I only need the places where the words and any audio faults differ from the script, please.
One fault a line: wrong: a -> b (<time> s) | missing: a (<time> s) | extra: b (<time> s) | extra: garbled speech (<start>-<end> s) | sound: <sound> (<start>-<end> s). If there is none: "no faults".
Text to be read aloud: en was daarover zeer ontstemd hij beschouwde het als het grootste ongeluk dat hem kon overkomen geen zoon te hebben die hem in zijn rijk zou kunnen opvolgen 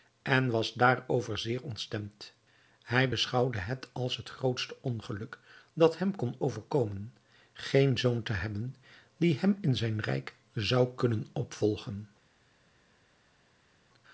no faults